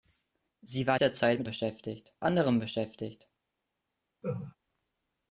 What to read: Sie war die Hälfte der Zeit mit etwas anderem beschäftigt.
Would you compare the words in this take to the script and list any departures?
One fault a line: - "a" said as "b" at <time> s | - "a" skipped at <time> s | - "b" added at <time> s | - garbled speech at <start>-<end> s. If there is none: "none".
- "die Hälfte" skipped at 1.0 s
- "etwas" said as "beschäftigt" at 1.4 s